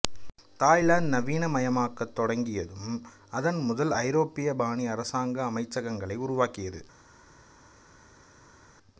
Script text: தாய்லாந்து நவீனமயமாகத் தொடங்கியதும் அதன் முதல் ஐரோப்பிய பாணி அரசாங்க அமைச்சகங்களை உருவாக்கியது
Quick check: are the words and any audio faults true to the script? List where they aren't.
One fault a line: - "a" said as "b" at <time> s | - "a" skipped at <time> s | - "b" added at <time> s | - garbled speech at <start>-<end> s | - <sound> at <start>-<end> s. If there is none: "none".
none